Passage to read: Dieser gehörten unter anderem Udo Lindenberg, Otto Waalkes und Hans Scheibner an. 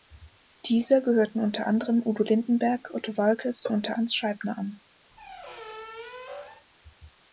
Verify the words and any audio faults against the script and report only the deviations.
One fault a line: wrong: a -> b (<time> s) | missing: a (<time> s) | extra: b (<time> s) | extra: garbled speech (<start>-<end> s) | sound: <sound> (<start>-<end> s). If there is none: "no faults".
wrong: und -> unter (3.7 s)
sound: squeak (5.1-6.7 s)